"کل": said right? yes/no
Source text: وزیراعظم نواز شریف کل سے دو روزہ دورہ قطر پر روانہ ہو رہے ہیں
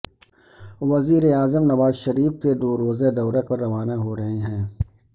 no